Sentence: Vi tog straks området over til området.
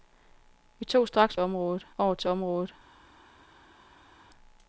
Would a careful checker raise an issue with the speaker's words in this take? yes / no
no